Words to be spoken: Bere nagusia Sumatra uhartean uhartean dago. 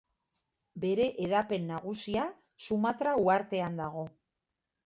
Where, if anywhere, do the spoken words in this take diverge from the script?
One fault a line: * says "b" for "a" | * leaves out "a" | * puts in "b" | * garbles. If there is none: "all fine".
* puts in "hedapen"
* leaves out "uhartean"